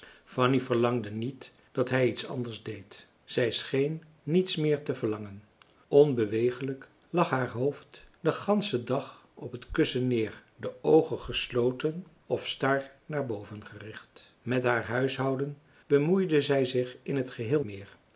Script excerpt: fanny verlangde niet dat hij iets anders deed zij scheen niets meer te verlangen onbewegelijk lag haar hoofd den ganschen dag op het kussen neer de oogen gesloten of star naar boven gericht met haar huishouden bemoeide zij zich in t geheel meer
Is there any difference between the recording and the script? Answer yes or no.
no